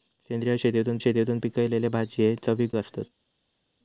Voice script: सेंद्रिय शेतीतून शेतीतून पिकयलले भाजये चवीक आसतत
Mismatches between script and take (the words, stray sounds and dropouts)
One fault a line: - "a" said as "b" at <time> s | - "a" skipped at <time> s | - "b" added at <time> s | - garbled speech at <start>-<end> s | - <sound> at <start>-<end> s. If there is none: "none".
none